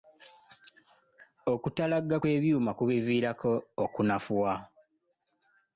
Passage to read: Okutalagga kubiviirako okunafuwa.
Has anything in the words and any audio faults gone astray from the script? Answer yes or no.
yes